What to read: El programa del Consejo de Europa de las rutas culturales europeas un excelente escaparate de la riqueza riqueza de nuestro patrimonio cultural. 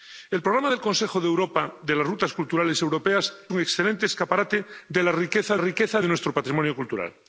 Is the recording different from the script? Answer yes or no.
no